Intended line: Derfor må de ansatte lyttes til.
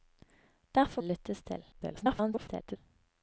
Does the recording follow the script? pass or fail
fail